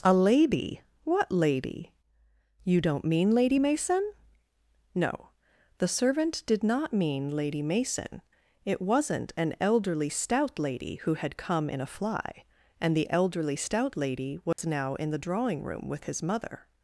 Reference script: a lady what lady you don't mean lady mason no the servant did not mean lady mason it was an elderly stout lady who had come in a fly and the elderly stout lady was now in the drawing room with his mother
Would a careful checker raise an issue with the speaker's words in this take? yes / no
yes